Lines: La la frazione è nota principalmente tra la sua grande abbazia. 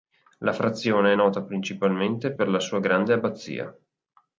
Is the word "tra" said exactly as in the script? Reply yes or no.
no